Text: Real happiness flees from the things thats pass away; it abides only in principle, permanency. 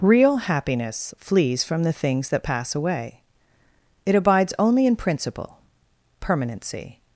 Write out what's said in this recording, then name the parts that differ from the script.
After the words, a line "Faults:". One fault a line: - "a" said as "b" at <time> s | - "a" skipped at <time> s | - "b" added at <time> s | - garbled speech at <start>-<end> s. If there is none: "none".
Real happiness flees from the things that pass away; it abides only in principle, permanency.
Faults:
- "thats" said as "that" at 2.3 s